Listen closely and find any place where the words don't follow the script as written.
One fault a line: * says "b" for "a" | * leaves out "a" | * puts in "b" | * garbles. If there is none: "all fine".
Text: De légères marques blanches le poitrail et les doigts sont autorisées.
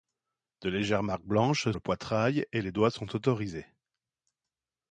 all fine